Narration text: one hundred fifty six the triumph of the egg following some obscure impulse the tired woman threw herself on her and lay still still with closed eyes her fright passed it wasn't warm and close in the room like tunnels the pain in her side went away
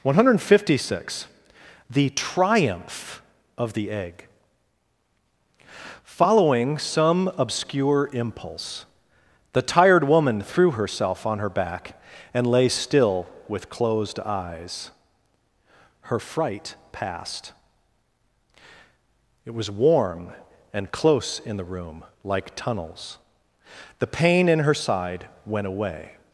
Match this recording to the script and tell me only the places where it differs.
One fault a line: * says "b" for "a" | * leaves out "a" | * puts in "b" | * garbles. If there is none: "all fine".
* puts in "back"
* leaves out "still"
* says "was" for "wasn't"